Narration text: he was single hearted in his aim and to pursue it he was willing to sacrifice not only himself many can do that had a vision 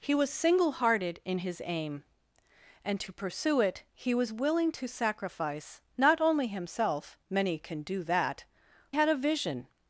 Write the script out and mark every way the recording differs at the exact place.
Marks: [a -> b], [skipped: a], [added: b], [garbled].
he was single hearted in his aim and to pursue it he was willing to sacrifice not only himself many can do that had a vision